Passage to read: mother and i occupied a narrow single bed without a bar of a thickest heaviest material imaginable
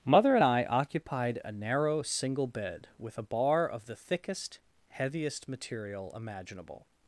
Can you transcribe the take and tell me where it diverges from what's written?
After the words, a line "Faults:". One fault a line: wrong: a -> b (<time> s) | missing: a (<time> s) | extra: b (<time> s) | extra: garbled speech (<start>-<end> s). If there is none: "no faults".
mother and i occupied a narrow single bed with a bar of the thickest heaviest material imaginable
Faults:
wrong: without -> with (3.0 s)
wrong: a -> the (3.9 s)